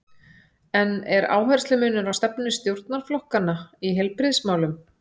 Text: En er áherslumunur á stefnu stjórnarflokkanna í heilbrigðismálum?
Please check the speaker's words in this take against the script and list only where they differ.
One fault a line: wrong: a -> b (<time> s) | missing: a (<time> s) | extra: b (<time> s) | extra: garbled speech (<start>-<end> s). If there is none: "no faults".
no faults